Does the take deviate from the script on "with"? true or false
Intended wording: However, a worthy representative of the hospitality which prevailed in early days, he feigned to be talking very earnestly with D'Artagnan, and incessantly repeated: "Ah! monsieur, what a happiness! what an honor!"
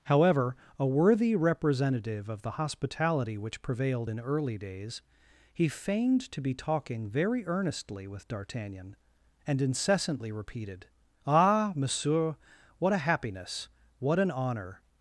false